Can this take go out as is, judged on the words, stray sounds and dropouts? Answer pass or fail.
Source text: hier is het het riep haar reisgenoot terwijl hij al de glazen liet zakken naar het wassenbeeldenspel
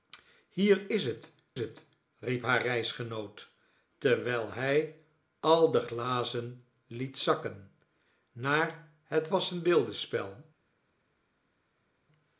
pass